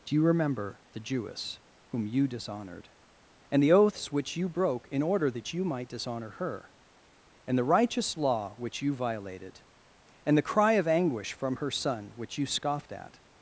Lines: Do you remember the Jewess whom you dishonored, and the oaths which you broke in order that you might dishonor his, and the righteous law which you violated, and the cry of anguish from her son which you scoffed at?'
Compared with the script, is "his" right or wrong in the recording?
wrong